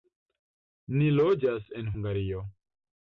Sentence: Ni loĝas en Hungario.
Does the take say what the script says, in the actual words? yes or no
yes